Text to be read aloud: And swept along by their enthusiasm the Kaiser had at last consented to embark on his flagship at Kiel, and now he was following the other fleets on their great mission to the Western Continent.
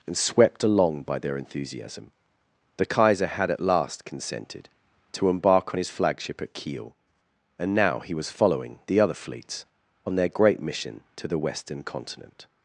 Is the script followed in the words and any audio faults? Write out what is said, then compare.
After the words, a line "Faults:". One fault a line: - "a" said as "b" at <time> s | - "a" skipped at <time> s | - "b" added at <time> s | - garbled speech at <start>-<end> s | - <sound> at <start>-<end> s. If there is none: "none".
And swept along by their enthusiasm the Kaiser had at last consented to embark on his flagship at Kiel, and now he was following the other fleets on their great mission to the Western Continent.
Faults:
none